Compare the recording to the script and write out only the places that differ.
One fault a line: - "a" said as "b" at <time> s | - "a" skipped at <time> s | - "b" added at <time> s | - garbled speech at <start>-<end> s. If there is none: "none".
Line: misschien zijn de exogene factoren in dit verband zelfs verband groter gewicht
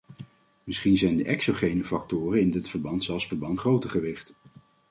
none